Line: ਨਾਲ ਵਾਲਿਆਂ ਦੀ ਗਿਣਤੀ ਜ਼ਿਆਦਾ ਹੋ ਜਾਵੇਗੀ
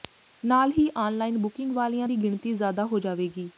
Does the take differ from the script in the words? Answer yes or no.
yes